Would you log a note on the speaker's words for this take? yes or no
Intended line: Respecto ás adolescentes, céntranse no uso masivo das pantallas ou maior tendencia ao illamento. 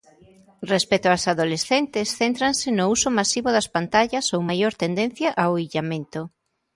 no